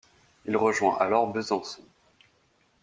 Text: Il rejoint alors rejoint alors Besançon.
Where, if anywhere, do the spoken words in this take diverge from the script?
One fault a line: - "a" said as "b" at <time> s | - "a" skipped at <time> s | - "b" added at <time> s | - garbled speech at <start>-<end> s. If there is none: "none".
- "rejoint alors" skipped at 1.3 s